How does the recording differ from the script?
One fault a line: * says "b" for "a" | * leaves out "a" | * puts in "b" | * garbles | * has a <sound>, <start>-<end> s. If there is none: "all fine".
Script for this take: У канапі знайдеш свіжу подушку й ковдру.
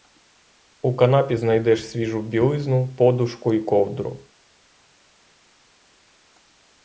* puts in "білизну"